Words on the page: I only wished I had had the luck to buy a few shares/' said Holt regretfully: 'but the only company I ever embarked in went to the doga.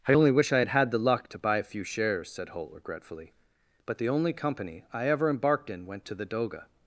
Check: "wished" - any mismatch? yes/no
yes